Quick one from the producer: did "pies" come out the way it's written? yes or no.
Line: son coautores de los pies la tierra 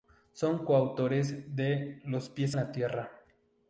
yes